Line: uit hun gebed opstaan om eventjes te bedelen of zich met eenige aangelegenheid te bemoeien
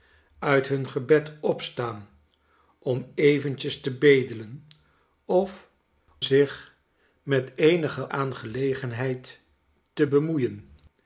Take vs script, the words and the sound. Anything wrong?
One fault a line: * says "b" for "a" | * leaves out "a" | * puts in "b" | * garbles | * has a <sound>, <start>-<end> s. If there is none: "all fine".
all fine